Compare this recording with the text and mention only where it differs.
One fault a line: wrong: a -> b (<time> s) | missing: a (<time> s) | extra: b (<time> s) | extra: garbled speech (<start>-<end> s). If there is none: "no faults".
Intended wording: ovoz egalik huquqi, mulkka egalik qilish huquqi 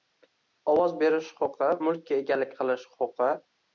wrong: egalik -> berish (1.0 s)